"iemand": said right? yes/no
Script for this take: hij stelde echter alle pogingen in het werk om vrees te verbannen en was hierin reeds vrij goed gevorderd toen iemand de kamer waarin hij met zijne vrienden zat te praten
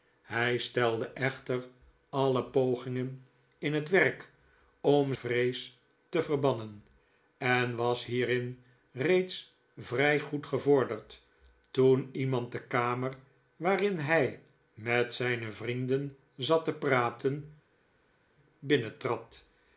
yes